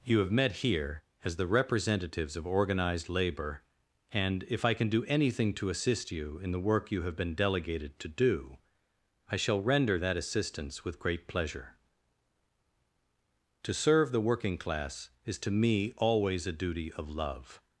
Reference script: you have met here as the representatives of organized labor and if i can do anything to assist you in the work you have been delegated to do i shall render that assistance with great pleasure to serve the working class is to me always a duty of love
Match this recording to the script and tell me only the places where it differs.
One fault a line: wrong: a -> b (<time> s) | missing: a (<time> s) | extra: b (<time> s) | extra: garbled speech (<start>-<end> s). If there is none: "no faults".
no faults